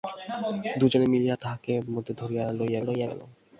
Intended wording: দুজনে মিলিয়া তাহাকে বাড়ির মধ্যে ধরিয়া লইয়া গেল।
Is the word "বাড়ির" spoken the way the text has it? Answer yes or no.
no